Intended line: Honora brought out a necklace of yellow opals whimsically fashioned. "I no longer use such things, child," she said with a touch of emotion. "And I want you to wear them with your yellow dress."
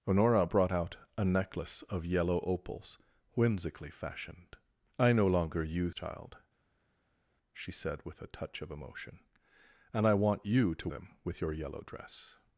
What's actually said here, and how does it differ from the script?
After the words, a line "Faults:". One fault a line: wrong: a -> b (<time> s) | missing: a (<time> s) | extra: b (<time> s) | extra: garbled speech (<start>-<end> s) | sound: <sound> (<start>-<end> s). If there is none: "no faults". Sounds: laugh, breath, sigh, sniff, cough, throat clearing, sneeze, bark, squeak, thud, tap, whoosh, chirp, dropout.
Honora brought out a necklace of yellow opals whimsically fashioned. "I no longer use child," she said with a touch of emotion. "And I want you to them with your yellow dress."
Faults:
missing: such things (6.0 s)
missing: wear (10.9 s)